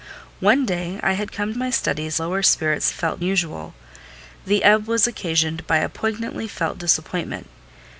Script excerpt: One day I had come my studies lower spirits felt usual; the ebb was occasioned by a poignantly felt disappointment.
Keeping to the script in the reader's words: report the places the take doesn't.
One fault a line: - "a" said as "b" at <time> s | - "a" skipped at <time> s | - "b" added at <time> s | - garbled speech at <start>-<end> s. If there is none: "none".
none